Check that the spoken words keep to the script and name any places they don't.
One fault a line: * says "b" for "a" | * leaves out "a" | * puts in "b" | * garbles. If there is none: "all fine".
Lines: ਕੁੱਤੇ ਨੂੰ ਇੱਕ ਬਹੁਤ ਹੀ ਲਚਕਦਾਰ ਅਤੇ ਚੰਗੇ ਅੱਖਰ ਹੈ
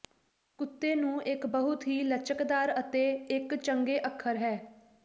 * puts in "ਇੱਕ"